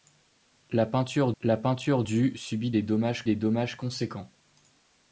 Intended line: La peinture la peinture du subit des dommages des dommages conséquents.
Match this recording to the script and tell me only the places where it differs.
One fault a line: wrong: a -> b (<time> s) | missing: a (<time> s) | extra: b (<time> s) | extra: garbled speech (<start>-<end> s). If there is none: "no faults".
no faults